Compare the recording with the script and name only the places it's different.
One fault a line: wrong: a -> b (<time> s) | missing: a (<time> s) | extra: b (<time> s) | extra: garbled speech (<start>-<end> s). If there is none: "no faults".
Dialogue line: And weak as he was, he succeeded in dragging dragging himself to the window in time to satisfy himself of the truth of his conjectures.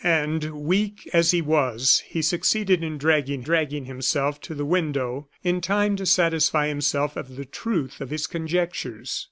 no faults